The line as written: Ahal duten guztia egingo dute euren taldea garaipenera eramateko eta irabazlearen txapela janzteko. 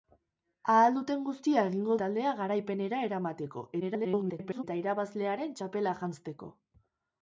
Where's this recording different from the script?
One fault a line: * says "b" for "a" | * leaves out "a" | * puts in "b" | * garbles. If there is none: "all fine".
* leaves out "dute euren"
* garbles